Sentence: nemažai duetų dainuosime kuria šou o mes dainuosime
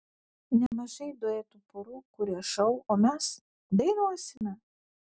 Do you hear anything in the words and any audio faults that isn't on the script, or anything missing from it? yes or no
yes